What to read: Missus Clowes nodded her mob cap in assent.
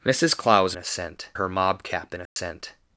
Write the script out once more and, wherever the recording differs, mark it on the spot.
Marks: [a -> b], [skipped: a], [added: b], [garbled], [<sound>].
Missus Clowes [nodded -> assent] her mob cap in assent. [dropout]